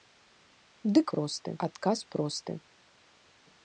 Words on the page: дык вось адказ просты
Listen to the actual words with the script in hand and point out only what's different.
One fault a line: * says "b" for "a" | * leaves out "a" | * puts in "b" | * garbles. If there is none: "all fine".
* says "просты" for "вось"